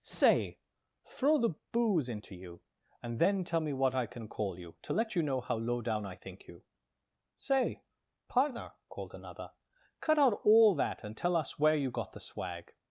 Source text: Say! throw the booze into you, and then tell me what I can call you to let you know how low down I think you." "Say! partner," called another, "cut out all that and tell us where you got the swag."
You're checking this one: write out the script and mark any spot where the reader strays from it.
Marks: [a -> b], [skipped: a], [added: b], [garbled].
Say! throw the booze into you, and then tell me what I can call you to let you know how low down I think you." "Say! partner," called another, "cut out all that and tell us where you got the swag."